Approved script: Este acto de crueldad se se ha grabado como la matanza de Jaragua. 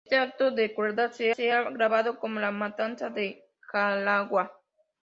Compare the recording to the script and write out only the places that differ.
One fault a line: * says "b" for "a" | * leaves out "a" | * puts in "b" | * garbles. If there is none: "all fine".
all fine